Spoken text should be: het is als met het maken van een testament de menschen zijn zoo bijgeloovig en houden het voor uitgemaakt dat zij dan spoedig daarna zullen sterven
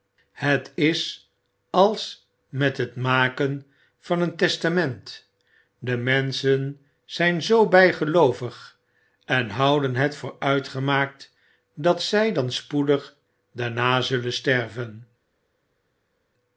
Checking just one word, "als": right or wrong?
right